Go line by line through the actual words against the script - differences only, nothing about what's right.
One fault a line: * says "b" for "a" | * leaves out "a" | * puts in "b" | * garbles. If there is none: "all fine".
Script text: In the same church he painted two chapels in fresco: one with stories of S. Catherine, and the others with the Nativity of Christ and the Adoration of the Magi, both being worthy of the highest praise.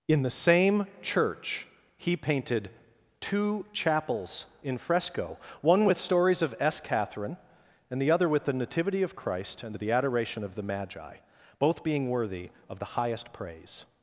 * says "other" for "others"